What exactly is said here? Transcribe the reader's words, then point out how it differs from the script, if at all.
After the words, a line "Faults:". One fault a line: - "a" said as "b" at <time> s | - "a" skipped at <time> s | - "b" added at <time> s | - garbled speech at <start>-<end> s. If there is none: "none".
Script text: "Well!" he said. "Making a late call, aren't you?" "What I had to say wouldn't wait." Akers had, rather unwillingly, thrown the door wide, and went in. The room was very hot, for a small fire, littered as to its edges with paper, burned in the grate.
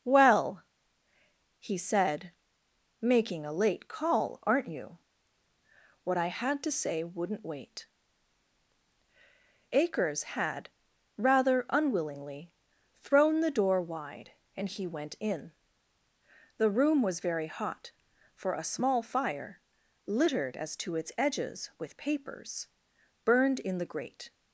"Well!" he said. "Making a late call, aren't you?" "What I had to say wouldn't wait." Akers had, rather unwillingly, thrown the door wide, and he went in. The room was very hot, for a small fire, littered as to its edges with papers, burned in the grate.
Faults:
- "he" added at 14.7 s
- "paper" said as "papers" at 22.0 s